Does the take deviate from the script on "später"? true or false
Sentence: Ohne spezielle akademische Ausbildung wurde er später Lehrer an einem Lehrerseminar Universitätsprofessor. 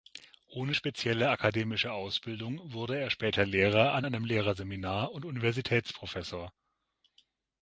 false